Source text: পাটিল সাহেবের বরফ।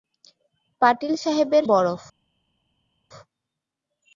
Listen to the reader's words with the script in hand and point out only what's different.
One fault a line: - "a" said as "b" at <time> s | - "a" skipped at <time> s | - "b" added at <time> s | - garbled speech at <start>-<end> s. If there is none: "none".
none